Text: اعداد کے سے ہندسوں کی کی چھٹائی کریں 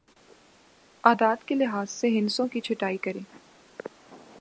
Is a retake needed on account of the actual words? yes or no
yes